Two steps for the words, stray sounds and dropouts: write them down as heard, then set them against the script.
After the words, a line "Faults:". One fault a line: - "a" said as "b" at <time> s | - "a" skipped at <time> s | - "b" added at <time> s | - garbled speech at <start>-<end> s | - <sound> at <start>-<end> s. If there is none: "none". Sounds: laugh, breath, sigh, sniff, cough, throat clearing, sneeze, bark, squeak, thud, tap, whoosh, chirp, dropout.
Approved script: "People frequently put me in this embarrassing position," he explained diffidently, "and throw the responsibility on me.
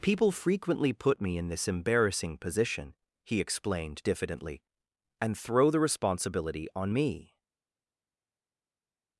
"People frequently put me in this embarrassing position," he explained diffidently, "and throw the responsibility on me.
Faults:
none